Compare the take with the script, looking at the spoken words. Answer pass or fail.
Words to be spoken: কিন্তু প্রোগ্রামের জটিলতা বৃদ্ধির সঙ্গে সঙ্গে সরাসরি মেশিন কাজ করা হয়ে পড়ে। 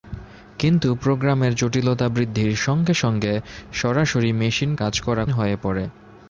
pass